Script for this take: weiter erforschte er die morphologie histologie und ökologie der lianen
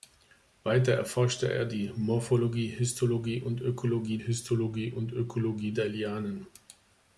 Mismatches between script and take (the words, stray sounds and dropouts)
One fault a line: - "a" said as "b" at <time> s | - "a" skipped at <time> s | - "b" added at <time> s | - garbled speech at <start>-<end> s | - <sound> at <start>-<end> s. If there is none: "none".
- "histologie und ökologie" added at 4.2 s